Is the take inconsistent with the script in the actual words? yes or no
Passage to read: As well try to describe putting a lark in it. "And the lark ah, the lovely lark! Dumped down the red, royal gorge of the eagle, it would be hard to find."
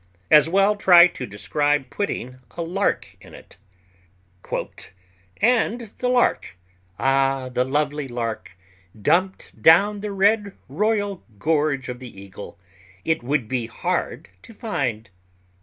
no